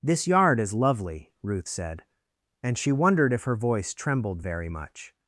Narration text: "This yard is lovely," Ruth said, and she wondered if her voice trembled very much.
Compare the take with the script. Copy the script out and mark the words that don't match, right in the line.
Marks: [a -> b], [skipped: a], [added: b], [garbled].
"This yard is lovely," Ruth said, and she wondered if her voice trembled very much.